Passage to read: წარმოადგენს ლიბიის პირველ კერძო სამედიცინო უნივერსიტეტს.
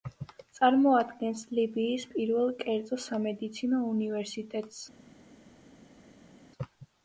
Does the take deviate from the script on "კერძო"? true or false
false